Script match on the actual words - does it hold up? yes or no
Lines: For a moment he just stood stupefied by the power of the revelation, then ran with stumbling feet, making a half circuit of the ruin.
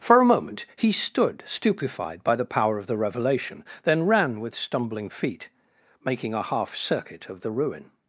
no